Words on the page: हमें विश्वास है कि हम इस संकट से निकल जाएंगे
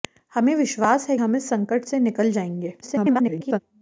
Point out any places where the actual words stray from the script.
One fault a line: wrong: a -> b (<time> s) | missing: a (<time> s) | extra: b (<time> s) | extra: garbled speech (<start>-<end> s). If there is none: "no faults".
missing: कि (1.2 s)
extra: garbled speech (2.8-3.6 s)